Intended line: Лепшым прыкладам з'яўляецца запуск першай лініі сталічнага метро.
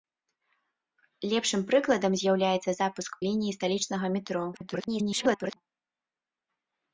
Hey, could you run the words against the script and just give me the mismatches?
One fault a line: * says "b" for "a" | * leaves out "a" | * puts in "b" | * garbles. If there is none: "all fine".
* leaves out "першай"
* garbles